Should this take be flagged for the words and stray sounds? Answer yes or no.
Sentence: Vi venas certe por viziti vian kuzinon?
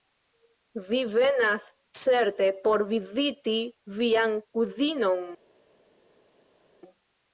no